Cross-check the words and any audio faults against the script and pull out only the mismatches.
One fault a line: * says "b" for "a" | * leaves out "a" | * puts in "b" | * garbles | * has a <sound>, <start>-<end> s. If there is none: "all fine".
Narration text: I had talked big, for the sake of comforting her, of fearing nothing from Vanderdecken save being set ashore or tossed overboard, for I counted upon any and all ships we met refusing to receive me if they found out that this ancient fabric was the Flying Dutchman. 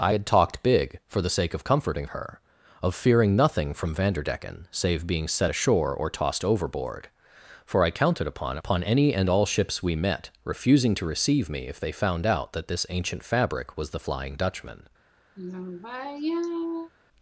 * puts in "upon"
* has a sigh, 15.4-16.9 s